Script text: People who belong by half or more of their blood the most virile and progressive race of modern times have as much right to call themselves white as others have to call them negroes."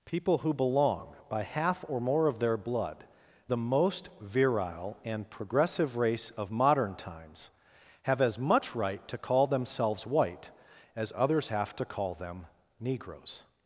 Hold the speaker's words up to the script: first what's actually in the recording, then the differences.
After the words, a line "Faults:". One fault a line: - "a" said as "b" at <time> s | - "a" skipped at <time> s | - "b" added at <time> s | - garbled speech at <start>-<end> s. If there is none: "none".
People who belong by half or more of their blood the most virile and progressive race of modern times have as much right to call themselves white as others have to call them negroes."
Faults:
none